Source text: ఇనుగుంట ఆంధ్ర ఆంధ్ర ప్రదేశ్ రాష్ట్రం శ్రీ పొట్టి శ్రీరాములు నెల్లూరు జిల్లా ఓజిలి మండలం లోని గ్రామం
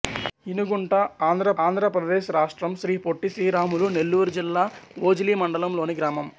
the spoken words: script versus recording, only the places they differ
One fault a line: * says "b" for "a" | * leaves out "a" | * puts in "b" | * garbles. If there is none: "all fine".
all fine